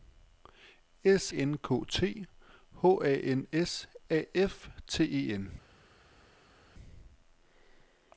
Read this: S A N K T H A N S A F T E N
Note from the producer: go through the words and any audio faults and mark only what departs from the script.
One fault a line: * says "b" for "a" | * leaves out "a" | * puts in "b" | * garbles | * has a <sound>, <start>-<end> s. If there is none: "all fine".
* leaves out "A"